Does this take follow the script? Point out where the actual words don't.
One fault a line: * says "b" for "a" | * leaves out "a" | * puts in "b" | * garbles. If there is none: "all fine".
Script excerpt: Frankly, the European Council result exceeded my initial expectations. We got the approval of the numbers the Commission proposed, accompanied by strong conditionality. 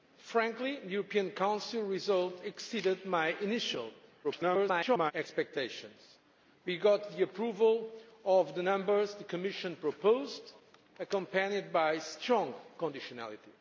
* garbles